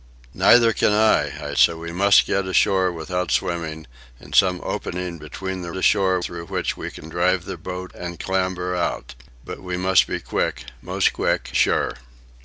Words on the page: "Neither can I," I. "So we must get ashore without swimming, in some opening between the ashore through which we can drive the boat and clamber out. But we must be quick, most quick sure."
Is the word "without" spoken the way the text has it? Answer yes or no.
yes